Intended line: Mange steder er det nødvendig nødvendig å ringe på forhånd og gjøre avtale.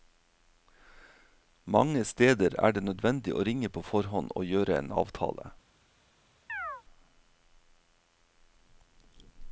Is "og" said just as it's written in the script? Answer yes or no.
yes